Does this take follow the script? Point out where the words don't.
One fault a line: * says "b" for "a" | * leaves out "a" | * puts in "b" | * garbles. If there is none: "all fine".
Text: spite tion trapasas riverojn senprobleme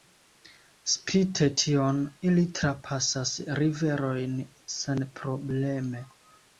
* puts in "ili"